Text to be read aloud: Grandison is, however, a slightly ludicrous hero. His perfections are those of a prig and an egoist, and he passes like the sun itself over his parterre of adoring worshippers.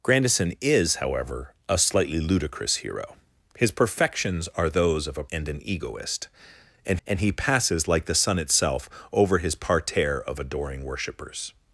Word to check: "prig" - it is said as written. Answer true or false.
false